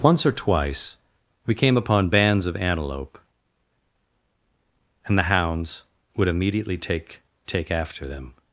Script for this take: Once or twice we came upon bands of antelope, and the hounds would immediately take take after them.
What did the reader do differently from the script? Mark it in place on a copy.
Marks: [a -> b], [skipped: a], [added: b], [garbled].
Once or twice we came upon bands of antelope, and the hounds would immediately take take after them.